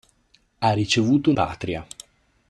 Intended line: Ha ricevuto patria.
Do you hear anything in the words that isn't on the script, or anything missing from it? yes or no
no